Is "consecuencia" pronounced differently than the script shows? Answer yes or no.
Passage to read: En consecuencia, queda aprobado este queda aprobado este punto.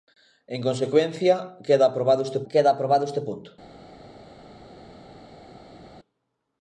no